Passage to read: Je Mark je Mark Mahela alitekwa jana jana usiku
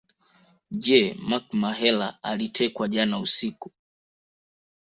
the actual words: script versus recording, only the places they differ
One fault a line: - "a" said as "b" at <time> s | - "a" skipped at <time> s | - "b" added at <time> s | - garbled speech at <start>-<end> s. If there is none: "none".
- "je Mark" skipped at 1.6 s
- "jana" skipped at 3.2 s